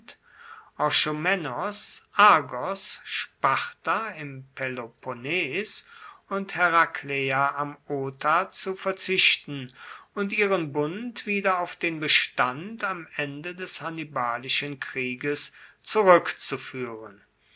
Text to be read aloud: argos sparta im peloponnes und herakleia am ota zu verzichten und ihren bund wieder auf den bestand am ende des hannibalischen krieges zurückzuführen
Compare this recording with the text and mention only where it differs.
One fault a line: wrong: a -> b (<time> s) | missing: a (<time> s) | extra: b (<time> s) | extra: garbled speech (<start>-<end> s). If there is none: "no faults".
no faults